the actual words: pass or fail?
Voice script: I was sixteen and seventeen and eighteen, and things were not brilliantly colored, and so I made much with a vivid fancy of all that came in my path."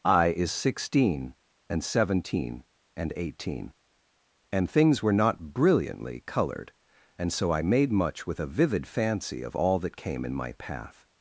fail